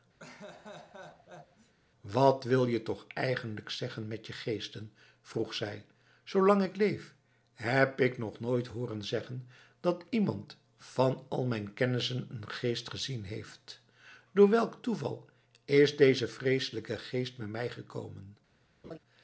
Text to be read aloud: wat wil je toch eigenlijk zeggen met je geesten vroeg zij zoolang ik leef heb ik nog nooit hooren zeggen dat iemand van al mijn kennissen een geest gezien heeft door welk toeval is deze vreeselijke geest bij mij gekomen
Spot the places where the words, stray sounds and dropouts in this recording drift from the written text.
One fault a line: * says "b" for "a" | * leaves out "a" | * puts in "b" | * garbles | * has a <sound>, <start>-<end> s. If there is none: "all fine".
* has a laugh, 0.2-1.7 s
* has a laugh, 18.8-19.0 s